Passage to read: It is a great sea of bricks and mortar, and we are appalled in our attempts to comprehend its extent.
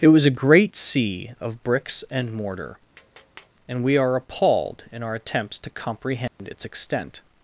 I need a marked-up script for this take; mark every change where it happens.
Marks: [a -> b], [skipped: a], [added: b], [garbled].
It [is -> was] a great sea of bricks and mortar, and we are appalled in our attempts to comprehend its extent.